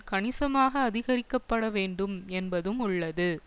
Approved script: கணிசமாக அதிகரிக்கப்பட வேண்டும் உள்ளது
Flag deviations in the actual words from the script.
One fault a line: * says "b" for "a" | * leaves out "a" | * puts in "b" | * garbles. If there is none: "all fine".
* puts in "என்பதும்"